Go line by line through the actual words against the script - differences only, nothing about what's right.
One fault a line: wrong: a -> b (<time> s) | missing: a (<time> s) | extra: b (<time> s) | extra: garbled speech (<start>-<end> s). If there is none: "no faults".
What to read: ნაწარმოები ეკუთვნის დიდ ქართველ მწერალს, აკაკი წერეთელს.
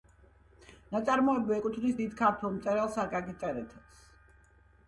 no faults